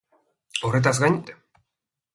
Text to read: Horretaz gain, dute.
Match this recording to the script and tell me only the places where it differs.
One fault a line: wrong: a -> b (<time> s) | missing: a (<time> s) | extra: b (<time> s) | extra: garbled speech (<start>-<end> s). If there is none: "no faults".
no faults